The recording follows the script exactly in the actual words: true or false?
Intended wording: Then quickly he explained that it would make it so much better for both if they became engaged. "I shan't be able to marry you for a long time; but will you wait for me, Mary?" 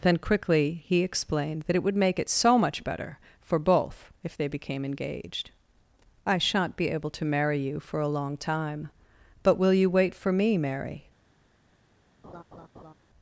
true